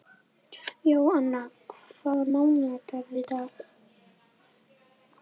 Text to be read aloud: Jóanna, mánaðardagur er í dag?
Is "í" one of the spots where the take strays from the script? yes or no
no